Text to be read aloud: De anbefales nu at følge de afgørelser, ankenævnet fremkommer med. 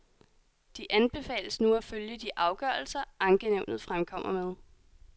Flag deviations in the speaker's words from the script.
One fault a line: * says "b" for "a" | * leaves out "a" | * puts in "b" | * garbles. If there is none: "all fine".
all fine